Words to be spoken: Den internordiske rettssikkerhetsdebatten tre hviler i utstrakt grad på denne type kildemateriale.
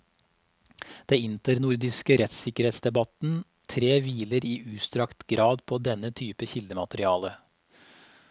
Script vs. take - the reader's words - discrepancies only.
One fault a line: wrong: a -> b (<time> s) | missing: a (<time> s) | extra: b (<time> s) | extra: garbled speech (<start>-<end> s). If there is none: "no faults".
no faults